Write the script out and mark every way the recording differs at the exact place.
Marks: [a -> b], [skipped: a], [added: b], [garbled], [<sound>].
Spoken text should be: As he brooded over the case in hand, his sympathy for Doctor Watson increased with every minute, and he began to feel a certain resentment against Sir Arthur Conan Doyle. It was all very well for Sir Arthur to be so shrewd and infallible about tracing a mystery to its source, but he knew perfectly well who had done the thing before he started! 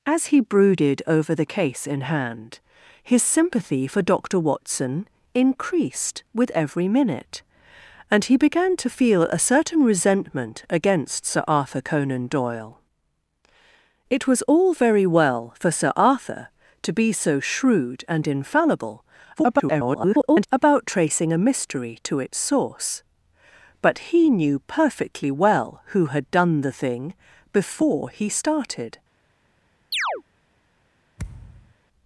As he brooded over the case in hand, his sympathy for Doctor Watson increased with every minute, and he began to feel a certain resentment against Sir Arthur Conan Doyle. It was all very well for Sir Arthur to be so shrewd and infallible [garbled] about tracing a mystery to its source, but he knew perfectly well who had done the thing before he started! [chirp] [thud]